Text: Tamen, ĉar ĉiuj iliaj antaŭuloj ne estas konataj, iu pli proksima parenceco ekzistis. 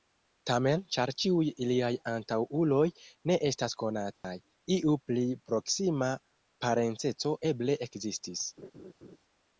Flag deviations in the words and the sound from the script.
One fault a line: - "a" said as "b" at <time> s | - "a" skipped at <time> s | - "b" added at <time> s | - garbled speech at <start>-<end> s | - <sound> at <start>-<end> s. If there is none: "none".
- dropout at 4.1-4.2 s
- "eble" added at 7.5 s
- laugh at 8.6-9.2 s